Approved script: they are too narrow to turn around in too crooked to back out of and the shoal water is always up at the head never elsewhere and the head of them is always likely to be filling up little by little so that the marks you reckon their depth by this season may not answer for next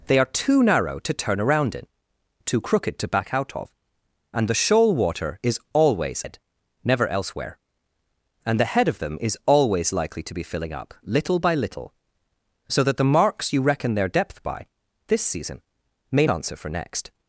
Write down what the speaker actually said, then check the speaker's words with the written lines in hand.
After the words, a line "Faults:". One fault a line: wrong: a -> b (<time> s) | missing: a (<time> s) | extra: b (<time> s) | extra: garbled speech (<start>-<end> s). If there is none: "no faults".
they are too narrow to turn around in too crooked to back out of and the shoal water is always head never elsewhere and the head of them is always likely to be filling up little by little so that the marks you reckon their depth by this season may answer for next
Faults:
missing: up at the (6.2 s)
missing: not (16.3 s)